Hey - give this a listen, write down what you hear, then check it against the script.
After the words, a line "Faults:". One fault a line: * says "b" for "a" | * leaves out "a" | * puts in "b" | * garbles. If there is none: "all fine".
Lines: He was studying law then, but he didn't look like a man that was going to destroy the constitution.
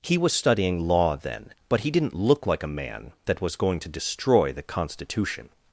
He was studying law then, but he didn't look like a man that was going to destroy the constitution.
Faults:
all fine